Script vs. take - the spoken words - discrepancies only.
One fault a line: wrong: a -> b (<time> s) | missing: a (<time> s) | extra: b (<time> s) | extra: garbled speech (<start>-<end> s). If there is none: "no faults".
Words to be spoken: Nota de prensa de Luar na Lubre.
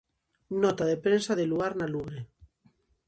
no faults